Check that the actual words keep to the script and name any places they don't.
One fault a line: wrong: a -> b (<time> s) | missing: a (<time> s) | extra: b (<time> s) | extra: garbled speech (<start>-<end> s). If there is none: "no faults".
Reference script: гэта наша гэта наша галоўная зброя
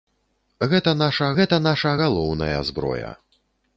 no faults